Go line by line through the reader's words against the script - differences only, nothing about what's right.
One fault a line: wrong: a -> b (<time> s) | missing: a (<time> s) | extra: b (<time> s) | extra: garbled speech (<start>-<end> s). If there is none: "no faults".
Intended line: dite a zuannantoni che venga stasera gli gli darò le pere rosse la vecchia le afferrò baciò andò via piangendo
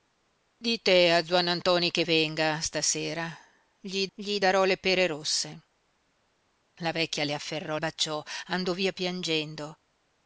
no faults